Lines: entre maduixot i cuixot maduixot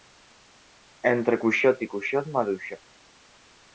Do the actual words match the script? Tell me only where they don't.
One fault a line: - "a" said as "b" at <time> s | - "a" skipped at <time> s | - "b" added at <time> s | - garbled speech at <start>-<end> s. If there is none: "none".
- "maduixot" said as "cuixot" at 1.4 s